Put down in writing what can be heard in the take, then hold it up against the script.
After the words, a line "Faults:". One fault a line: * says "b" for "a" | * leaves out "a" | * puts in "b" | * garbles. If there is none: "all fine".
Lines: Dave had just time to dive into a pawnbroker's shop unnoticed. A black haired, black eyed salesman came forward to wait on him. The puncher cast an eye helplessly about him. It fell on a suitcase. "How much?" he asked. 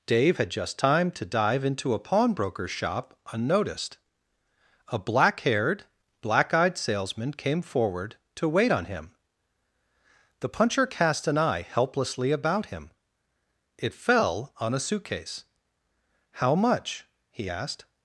Dave had just time to dive into a pawnbroker's shop unnoticed. A black haired, black eyed salesman came forward to wait on him. The puncher cast an eye helplessly about him. It fell on a suitcase. "How much?" he asked.
Faults:
all fine